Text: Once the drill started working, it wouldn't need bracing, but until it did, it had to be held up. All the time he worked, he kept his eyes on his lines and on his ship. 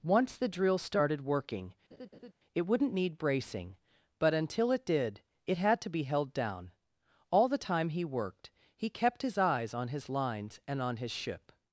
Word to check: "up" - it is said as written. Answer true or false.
false